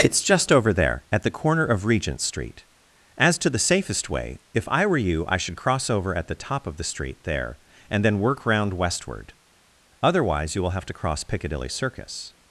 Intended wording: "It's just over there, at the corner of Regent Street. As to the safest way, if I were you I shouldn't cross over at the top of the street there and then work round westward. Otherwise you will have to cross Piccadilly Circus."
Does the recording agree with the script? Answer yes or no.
no